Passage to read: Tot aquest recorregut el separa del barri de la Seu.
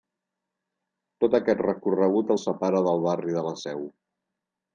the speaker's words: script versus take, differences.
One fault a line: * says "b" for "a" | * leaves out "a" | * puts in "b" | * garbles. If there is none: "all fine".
all fine